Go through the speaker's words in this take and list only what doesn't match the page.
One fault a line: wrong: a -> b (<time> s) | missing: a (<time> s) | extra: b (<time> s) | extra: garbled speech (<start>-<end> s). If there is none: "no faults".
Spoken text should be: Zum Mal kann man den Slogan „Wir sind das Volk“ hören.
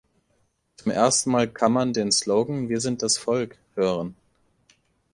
extra: ersten (0.9 s)